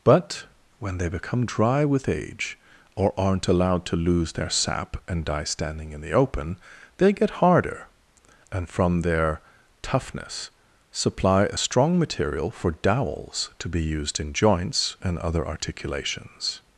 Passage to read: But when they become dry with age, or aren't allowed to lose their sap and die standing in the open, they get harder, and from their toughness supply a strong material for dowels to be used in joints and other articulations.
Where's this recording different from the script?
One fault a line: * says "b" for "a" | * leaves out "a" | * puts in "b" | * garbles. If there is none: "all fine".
all fine